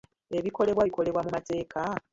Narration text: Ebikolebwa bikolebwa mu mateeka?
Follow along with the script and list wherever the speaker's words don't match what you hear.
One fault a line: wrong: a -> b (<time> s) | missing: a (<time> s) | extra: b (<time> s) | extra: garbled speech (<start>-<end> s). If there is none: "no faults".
no faults